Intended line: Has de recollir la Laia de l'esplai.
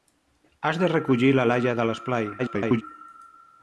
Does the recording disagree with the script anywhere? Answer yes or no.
yes